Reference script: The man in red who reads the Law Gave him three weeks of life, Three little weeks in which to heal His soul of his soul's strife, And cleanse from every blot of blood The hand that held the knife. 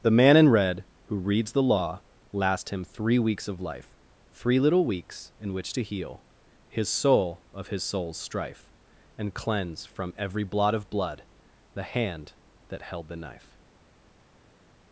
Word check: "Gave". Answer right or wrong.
wrong